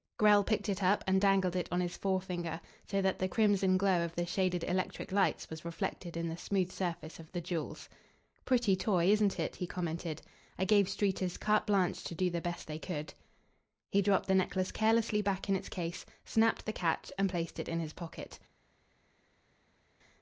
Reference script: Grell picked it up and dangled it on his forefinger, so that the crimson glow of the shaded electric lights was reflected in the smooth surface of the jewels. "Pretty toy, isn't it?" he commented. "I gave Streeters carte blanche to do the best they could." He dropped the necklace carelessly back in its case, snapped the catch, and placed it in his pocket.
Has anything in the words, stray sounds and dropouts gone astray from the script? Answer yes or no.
no